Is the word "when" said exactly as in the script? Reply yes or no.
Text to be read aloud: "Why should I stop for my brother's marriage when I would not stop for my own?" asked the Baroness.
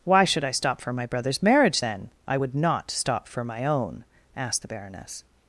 no